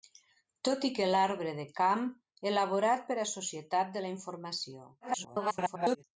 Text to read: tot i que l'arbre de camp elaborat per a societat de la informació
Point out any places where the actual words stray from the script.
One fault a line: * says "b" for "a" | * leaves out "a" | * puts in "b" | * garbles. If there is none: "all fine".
* garbles